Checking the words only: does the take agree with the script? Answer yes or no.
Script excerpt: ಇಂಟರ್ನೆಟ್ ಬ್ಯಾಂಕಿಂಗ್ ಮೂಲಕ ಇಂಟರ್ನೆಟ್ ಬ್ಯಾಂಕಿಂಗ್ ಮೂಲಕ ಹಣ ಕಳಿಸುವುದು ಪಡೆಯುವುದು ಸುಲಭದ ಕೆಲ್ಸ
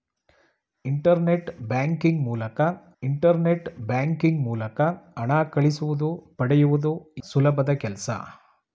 yes